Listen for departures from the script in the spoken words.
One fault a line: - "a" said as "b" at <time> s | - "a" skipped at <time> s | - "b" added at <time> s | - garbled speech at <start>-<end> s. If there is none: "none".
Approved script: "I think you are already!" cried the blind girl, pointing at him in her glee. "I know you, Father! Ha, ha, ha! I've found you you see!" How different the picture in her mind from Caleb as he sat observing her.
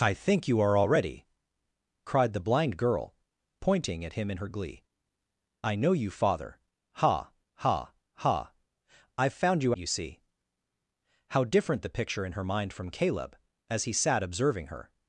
none